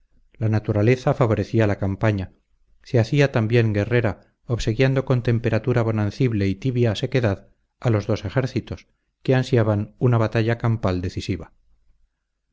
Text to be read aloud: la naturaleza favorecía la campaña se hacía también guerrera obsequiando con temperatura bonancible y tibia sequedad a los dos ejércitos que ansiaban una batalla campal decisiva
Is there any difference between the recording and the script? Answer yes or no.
no